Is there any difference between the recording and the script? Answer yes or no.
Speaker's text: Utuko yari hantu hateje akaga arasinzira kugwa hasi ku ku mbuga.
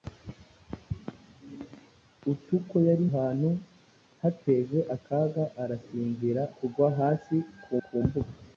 no